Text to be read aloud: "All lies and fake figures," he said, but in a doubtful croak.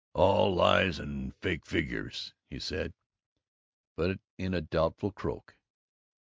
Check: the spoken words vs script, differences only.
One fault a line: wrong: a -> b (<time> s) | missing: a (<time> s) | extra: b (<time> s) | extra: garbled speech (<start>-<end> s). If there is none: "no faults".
no faults